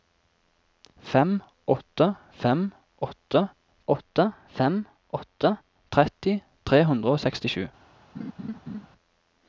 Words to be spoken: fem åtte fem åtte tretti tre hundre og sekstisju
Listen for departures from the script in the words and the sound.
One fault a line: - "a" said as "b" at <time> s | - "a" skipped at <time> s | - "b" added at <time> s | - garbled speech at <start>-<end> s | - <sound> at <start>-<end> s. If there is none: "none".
- "åtte fem åtte" added at 3.9 s
- laugh at 8.1-8.9 s